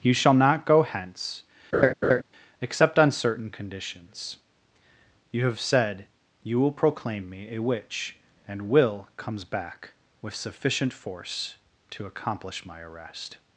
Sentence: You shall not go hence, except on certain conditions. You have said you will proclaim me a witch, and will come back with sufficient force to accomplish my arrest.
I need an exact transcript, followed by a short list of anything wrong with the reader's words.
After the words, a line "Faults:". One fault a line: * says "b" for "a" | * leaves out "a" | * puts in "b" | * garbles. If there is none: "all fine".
You shall not go hence, except on certain conditions. You have said you will proclaim me a witch, and will comes back with sufficient force to accomplish my arrest.
Faults:
* says "comes" for "come"